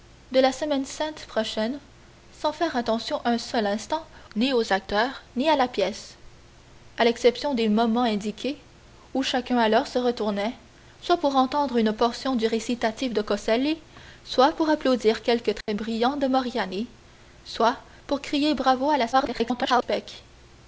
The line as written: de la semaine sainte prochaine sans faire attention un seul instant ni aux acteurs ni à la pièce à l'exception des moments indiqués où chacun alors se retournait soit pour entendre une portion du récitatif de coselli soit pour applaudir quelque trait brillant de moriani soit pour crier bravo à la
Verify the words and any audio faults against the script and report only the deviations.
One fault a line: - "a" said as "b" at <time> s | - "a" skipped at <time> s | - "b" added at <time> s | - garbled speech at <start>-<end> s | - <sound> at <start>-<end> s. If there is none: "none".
- dropout at 15.6-15.7 s
- garbled speech at 19.1-19.8 s